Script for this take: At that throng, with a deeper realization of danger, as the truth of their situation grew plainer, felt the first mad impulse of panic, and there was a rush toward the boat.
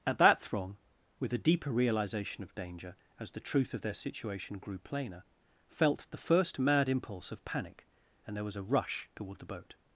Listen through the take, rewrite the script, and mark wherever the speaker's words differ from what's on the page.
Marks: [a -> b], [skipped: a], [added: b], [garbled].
At that throng, with a deeper realization of danger, as the truth of their situation grew plainer, felt the first mad impulse of panic, and there was a rush toward the boat.